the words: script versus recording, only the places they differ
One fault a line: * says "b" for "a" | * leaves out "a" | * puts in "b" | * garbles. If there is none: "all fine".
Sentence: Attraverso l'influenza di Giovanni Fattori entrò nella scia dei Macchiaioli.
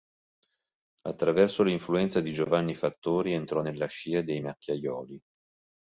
all fine